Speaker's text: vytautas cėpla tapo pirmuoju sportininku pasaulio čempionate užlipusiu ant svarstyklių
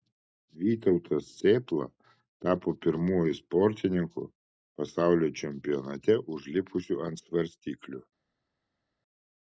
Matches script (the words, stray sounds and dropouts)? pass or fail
pass